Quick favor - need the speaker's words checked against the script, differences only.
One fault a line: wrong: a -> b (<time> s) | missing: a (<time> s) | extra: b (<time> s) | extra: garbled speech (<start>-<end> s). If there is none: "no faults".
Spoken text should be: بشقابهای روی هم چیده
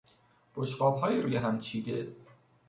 no faults